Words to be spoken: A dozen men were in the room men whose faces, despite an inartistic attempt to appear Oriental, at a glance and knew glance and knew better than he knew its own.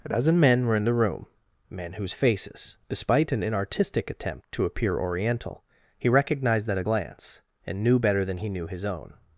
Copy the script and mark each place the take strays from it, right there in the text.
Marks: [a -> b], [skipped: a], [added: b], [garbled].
A dozen men were in the room men whose faces, despite an inartistic attempt to appear Oriental, [added: he recognized] at a glance and knew [skipped: glance and knew] better than he knew [its -> his] own.